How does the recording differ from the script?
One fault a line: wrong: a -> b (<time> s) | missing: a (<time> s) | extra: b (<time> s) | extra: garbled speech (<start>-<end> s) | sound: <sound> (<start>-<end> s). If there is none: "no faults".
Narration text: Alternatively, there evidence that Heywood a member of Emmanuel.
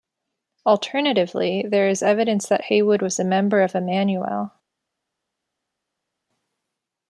extra: is (1.9 s)
extra: was (3.0 s)